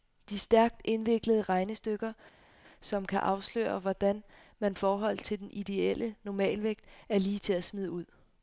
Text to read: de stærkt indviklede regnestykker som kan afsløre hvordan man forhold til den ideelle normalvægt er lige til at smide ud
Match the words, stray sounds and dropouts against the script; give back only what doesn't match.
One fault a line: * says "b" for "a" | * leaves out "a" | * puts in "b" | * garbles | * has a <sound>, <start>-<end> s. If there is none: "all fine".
all fine